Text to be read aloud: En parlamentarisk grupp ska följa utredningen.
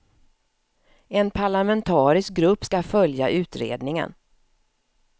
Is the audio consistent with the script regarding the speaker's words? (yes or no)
yes